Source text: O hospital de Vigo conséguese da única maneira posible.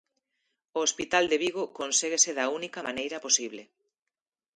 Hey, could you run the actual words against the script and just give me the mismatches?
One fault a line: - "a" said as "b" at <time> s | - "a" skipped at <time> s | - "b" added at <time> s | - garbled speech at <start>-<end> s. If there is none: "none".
none